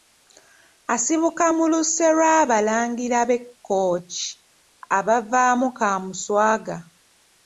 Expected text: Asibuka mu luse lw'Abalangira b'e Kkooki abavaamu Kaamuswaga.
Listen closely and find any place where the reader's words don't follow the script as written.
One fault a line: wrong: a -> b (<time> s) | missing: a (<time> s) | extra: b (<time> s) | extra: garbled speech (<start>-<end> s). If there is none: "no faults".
no faults